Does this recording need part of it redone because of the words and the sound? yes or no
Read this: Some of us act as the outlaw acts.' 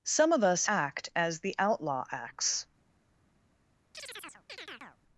yes